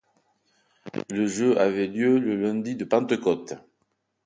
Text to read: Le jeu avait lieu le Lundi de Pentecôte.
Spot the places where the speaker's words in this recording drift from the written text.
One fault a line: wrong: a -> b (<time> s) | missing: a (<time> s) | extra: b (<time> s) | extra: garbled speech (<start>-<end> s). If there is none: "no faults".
no faults